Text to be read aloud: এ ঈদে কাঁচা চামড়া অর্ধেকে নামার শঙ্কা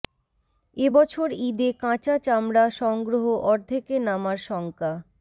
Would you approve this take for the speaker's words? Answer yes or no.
no